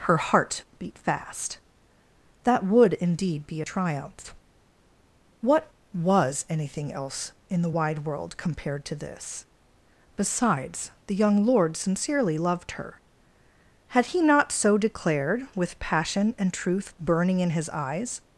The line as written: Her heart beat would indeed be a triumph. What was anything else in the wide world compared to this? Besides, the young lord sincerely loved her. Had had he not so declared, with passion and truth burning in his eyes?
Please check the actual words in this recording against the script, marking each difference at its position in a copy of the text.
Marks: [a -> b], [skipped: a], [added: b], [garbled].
Her heart beat [added: fast That] would indeed be a triumph. What was anything else in the wide world compared to this? Besides, the young lord sincerely loved her. Had [skipped: had] he not so declared, with passion and truth burning in his eyes?